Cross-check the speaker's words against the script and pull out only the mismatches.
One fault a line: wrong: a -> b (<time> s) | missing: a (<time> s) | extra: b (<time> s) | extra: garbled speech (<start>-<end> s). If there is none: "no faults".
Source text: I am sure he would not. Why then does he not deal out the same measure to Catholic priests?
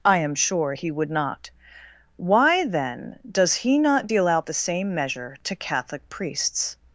no faults